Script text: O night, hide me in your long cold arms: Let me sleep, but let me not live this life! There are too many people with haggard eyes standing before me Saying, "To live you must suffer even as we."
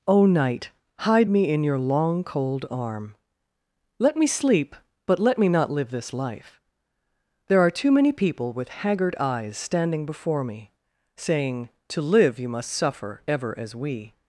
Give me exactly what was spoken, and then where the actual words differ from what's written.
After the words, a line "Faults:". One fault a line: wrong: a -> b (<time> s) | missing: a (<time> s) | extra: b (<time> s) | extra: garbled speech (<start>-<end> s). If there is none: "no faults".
O night, hide me in your long cold arm: Let me sleep, but let me not live this life! There are too many people with haggard eyes standing before me Saying, "To live you must suffer ever as we."
Faults:
wrong: arms -> arm (2.7 s)
wrong: even -> ever (13.3 s)